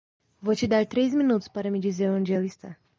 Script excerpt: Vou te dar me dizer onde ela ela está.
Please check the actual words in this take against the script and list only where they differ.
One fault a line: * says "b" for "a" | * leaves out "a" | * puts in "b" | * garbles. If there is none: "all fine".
* puts in "três minutos para"
* leaves out "ela"